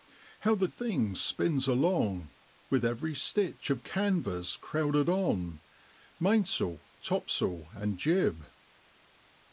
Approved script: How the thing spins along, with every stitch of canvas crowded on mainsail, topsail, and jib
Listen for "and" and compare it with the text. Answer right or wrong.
right